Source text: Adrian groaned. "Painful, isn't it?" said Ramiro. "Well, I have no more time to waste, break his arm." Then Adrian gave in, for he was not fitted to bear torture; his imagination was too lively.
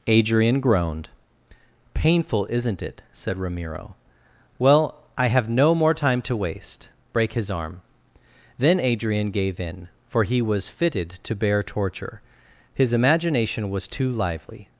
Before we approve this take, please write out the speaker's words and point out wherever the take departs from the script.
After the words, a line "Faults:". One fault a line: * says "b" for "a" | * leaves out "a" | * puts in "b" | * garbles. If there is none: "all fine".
Adrian groaned. "Painful, isn't it?" said Ramiro. "Well, I have no more time to waste, break his arm." Then Adrian gave in, for he was fitted to bear torture; his imagination was too lively.
Faults:
* leaves out "not"